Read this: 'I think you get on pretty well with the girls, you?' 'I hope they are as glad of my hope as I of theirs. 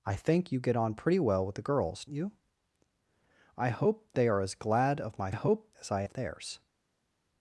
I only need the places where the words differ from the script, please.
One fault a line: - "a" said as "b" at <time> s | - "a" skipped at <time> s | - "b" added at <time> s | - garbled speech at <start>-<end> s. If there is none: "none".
none